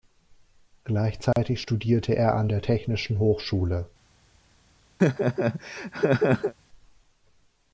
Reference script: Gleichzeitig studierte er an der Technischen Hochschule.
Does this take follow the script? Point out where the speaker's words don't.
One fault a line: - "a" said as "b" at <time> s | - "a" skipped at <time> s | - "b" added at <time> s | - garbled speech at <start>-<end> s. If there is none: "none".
none